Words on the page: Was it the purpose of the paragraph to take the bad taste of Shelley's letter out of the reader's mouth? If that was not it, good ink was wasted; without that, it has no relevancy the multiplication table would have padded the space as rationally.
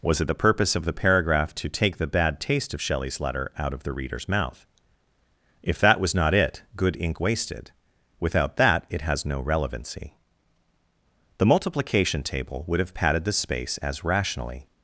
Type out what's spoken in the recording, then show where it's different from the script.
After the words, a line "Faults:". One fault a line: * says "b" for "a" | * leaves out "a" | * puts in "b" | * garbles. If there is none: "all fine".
Was it the purpose of the paragraph to take the bad taste of Shelley's letter out of the reader's mouth? If that was not it, good ink wasted; without that, it has no relevancy the multiplication table would have padded the space as rationally.
Faults:
* leaves out "was"